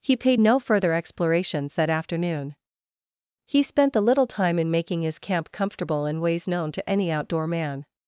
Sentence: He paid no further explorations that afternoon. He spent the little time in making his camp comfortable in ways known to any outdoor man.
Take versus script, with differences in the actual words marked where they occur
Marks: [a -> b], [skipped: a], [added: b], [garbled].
He paid no further explorations that afternoon. He spent the little time in making his camp comfortable in ways known to any outdoor man.